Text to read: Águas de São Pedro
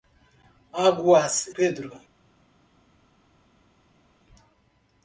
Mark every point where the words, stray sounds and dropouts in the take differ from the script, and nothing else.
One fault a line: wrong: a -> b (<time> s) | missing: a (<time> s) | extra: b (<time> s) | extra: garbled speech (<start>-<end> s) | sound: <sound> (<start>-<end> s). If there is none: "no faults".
missing: de São (1.5 s)